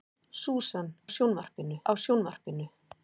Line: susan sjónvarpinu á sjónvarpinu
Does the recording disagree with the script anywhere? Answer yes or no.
no